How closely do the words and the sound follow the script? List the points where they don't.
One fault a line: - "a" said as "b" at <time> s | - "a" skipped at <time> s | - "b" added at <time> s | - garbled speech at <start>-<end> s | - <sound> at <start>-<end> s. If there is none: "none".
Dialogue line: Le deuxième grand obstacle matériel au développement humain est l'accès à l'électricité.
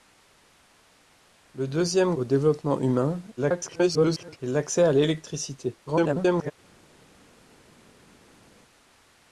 - "grand obstacle matériel" skipped at 2.1 s
- garbled speech at 3.4-4.4 s
- garbled speech at 5.9-6.5 s